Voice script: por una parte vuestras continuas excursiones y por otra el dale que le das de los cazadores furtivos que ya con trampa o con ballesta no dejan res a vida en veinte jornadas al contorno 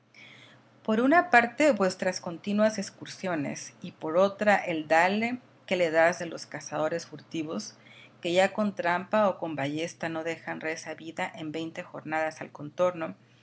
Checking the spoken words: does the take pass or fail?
pass